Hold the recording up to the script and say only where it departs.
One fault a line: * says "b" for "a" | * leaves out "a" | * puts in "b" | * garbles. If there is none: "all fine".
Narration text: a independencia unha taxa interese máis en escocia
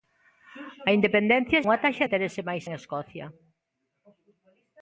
all fine